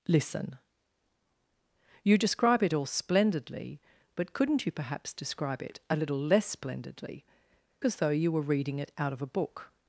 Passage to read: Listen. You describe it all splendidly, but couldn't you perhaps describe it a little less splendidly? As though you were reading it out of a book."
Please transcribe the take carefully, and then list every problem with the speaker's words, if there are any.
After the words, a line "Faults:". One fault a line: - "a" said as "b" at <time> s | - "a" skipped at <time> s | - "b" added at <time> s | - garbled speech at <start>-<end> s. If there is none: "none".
Listen. You describe it all splendidly, but couldn't you perhaps describe it a little less splendidly? As though you were reading it out of a book."
Faults:
none